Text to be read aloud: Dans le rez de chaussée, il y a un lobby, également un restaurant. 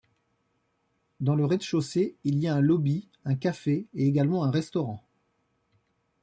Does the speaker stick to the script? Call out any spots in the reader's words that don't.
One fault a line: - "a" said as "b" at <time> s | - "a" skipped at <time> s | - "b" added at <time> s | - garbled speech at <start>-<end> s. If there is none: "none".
- "un café et" added at 3.2 s